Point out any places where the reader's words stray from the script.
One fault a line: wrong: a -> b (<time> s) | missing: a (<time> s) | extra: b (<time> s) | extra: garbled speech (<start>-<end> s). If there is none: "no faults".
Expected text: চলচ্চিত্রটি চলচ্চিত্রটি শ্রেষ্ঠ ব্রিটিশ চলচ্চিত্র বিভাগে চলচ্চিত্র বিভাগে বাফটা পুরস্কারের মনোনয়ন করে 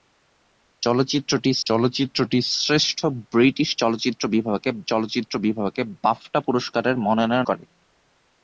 no faults